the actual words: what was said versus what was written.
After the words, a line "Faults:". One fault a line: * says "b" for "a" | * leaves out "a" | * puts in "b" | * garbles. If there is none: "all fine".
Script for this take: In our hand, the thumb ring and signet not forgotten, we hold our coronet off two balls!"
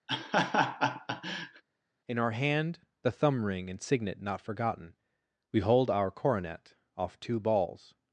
In our hand, the thumb ring and signet not forgotten, we hold our coronet off two balls!"
Faults:
all fine